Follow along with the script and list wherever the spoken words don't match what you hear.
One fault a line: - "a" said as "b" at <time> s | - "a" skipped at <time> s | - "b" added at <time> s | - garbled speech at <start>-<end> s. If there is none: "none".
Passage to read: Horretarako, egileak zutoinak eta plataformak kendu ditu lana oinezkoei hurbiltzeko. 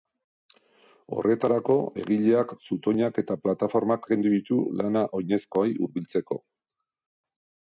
none